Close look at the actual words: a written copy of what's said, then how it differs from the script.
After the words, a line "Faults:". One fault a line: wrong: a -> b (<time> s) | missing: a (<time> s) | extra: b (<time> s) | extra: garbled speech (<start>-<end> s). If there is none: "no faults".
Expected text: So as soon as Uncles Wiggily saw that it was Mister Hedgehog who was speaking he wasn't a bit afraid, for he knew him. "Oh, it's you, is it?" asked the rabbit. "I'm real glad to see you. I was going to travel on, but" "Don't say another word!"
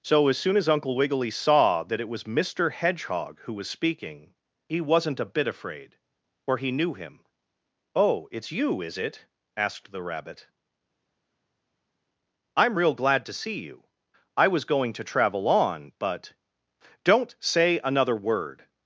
So as soon as Uncle Wiggily saw that it was Mister Hedgehog who was speaking he wasn't a bit afraid, for he knew him. "Oh, it's you, is it?" asked the rabbit. "I'm real glad to see you. I was going to travel on, but" "Don't say another word!"
Faults:
wrong: Uncles -> Uncle (0.7 s)